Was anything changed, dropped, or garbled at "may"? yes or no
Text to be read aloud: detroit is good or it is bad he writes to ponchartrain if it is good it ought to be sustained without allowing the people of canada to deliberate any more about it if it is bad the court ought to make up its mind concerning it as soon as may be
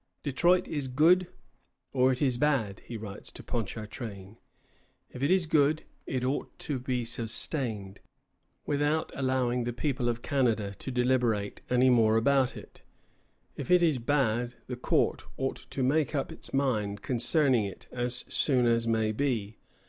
no